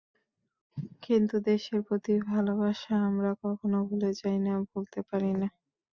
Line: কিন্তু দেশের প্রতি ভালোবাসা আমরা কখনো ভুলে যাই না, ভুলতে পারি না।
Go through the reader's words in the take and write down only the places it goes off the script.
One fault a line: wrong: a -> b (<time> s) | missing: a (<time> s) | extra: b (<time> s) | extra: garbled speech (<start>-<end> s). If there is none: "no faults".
no faults